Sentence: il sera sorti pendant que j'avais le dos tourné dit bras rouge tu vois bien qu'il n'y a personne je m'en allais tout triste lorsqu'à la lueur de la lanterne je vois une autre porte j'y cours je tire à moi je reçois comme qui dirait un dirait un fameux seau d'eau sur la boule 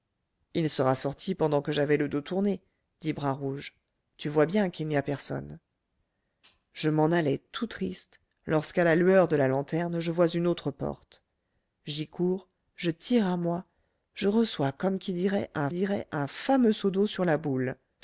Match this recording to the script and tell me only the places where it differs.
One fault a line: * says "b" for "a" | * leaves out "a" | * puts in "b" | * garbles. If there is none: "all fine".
all fine